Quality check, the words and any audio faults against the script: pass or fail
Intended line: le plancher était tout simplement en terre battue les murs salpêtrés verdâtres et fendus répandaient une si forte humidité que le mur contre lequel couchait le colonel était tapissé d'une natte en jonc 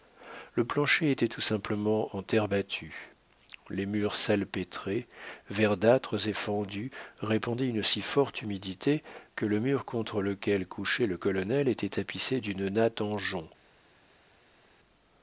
pass